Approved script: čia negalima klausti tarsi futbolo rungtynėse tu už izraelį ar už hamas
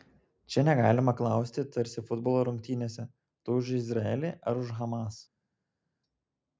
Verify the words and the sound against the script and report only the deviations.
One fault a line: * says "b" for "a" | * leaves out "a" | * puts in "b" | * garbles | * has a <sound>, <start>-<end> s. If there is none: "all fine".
all fine